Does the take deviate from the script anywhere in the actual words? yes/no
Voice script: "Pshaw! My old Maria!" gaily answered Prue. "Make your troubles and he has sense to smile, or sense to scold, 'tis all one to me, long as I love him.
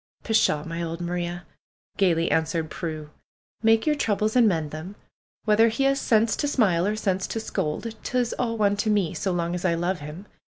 yes